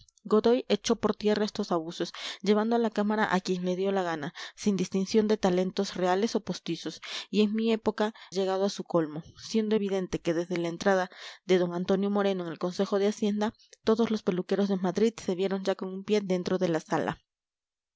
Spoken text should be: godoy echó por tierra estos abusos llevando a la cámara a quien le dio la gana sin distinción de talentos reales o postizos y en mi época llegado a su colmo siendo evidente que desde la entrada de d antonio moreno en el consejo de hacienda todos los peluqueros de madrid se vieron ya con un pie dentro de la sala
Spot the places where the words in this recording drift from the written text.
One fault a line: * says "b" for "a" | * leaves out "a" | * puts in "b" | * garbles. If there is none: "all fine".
all fine